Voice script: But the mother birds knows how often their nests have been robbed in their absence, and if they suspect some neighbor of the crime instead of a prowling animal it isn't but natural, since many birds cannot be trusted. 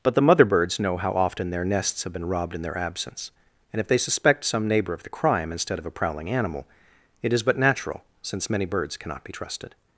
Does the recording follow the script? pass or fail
fail